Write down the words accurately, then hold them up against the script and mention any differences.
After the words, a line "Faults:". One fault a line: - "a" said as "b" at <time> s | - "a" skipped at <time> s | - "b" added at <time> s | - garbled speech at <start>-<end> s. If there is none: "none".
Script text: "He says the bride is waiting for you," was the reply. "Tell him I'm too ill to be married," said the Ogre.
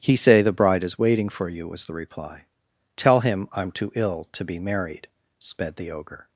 "He say the bride is waiting for you," was the reply. "Tell him I'm too ill to be married," sped the Ogre.
Faults:
- "says" said as "say" at 0.1 s
- "said" said as "sped" at 5.4 s